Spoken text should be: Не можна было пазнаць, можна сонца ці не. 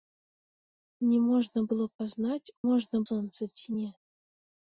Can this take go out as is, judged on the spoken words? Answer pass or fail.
pass